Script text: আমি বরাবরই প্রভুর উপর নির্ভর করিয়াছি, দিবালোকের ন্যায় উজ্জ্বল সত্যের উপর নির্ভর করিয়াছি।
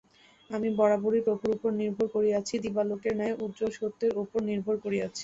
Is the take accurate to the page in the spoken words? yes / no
yes